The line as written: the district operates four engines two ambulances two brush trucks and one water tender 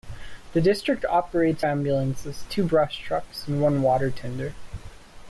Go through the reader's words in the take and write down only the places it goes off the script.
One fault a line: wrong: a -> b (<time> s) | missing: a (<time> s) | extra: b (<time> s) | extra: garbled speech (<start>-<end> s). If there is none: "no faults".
missing: four engines two (1.6 s)